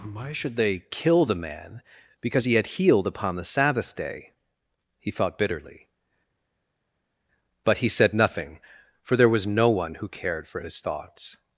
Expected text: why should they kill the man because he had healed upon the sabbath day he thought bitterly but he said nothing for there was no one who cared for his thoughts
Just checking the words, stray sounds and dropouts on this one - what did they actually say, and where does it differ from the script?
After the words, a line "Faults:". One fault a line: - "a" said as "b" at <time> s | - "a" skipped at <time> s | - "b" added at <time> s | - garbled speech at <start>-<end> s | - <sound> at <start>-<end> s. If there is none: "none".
why should they kill the man because he had healed upon the sabbath day he thought bitterly but he said nothing for there was no one who cared for his thoughts
Faults:
none